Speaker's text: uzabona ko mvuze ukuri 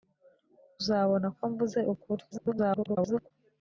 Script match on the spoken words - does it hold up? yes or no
no